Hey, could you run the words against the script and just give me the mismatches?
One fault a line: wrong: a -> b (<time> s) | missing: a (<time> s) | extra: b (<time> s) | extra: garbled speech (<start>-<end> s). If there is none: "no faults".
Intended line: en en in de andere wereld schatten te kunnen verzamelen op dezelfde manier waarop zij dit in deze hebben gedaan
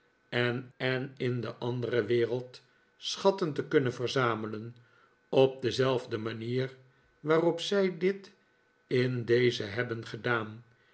no faults